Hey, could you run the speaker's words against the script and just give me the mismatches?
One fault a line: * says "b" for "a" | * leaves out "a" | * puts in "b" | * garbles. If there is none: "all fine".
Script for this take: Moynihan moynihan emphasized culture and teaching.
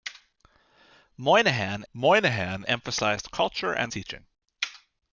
all fine